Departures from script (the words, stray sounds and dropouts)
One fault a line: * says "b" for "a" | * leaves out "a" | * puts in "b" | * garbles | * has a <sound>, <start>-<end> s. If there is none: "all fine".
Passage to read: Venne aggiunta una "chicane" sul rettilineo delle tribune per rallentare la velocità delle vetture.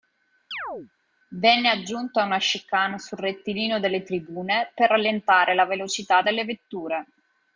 * has a chirp, 0.5-0.9 s